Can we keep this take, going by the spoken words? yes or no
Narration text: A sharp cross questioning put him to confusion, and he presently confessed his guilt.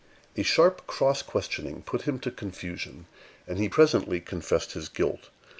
yes